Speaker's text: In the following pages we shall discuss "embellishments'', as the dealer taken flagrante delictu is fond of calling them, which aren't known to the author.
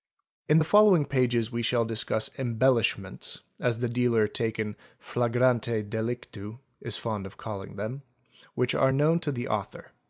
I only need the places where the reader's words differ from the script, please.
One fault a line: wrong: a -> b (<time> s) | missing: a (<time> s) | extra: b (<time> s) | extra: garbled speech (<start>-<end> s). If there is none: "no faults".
wrong: aren't -> are (8.8 s)